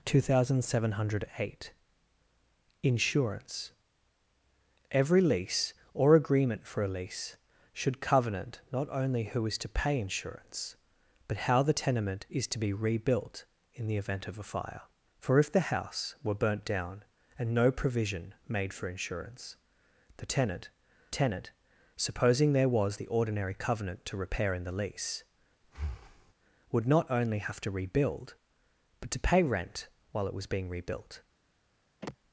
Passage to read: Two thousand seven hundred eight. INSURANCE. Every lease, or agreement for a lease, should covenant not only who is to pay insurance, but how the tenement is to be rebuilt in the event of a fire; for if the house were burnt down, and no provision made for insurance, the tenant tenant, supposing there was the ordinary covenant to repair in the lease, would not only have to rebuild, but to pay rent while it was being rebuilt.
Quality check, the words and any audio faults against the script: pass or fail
fail